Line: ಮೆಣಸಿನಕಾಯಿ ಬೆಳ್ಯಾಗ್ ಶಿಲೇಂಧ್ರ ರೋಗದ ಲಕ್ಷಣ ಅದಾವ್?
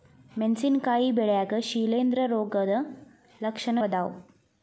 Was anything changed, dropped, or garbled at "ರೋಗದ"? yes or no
no